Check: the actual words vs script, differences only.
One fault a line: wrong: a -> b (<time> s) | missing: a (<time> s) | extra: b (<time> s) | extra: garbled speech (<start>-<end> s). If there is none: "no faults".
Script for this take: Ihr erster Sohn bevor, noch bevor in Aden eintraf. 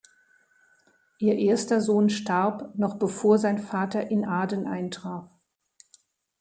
wrong: bevor -> starb (2.1 s)
extra: sein Vater (3.4 s)